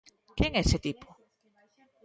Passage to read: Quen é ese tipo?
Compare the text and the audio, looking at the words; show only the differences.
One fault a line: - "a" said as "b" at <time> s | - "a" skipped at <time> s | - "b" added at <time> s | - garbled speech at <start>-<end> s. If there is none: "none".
none